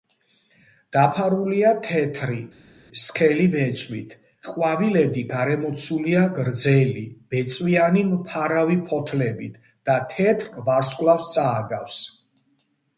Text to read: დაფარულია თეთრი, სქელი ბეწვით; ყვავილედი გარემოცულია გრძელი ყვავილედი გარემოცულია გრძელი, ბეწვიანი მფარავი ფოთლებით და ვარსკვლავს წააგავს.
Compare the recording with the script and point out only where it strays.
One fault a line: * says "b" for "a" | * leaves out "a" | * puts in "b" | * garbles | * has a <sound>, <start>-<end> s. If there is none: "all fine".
* leaves out "ყვავილედი გარემოცულია გრძელი"
* puts in "თეთრ"